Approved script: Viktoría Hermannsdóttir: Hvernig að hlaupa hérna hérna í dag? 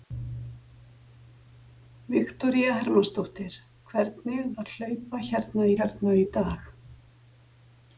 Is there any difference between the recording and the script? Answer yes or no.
no